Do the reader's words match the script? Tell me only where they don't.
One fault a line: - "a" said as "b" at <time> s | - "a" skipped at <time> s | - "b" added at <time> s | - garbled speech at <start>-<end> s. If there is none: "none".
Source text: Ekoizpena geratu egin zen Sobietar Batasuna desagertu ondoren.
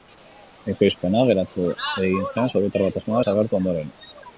none